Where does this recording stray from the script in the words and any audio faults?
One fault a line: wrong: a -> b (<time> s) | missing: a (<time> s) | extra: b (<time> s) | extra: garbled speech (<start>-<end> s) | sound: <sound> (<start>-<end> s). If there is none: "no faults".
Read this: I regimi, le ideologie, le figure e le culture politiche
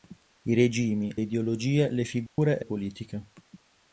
missing: le (1.1 s)
sound: dropout (2.3-2.4 s)
missing: le culture (2.6 s)